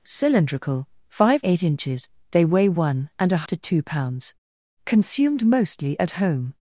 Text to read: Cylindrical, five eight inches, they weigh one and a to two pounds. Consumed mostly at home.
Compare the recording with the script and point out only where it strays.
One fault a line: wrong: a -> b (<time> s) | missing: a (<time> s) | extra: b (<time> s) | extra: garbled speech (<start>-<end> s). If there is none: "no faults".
no faults